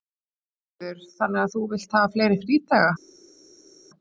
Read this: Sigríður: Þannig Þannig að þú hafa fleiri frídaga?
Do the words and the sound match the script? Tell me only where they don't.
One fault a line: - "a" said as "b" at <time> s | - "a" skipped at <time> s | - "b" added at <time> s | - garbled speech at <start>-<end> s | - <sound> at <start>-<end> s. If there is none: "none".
- "Þannig" skipped at 1.4 s
- "vilt" added at 1.8 s